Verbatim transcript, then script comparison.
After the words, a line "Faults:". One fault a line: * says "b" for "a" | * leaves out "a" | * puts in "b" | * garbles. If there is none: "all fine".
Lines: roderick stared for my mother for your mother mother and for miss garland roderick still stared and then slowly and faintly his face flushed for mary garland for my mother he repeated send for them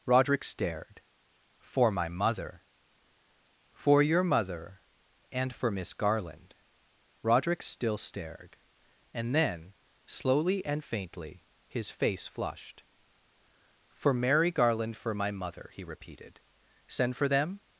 roderick stared for my mother for your mother and for miss garland roderick still stared and then slowly and faintly his face flushed for mary garland for my mother he repeated send for them
Faults:
* leaves out "mother"